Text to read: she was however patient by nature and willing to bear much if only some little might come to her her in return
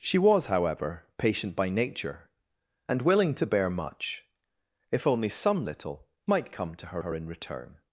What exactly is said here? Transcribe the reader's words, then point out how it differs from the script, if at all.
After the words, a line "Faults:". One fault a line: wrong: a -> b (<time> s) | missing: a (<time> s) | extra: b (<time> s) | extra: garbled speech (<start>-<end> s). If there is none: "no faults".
she was however patient by nature and willing to bear much if only some little might come to her her in return
Faults:
no faults